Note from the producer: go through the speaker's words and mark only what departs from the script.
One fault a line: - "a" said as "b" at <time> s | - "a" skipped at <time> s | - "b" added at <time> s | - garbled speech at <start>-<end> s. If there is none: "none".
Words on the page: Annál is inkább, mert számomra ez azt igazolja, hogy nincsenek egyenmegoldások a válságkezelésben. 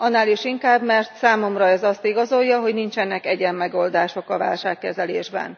none